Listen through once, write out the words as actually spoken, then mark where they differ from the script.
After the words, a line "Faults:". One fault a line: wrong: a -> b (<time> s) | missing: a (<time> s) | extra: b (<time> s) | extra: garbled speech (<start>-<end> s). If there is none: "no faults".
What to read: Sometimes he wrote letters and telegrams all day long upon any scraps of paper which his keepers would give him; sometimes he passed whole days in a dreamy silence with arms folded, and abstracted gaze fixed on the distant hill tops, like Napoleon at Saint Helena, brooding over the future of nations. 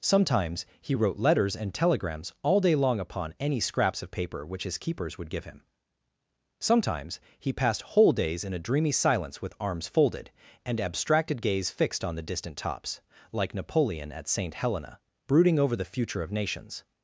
Sometimes he wrote letters and telegrams all day long upon any scraps of paper which his keepers would give him; sometimes he passed whole days in a dreamy silence with arms folded, and abstracted gaze fixed on the distant tops, like Napoleon at Saint Helena, brooding over the future of nations.
Faults:
missing: hill (12.6 s)